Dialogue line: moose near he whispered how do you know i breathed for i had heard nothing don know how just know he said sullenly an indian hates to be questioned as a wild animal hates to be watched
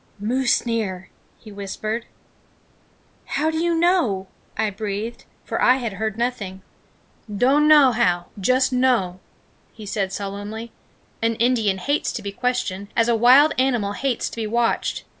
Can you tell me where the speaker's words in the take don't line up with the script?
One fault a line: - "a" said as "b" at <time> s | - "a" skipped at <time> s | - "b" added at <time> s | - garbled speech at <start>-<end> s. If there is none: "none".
none